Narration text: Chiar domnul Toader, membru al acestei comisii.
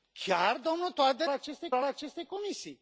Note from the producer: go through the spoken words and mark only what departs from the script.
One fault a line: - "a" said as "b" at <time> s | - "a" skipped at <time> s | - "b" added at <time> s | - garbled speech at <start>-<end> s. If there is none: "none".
- "membru" said as "acestei" at 1.3 s